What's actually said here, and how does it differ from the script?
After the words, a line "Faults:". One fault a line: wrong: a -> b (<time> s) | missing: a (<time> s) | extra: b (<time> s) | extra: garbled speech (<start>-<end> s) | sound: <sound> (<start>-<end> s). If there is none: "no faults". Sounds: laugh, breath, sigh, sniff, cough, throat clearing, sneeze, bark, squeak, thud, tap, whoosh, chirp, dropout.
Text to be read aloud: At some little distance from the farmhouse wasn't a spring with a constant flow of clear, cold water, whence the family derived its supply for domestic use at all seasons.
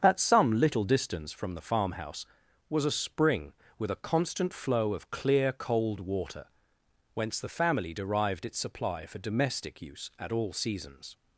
At some little distance from the farmhouse was a spring with a constant flow of clear, cold water, whence the family derived its supply for domestic use at all seasons.
Faults:
wrong: wasn't -> was (2.7 s)